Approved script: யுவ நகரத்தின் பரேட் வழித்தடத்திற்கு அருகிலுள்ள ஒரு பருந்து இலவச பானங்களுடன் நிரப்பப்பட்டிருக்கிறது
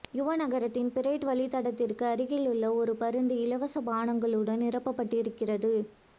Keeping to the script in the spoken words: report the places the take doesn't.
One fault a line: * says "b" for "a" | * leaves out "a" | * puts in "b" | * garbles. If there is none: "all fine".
all fine